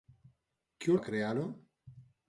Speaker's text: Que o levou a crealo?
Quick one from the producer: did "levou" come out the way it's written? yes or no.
no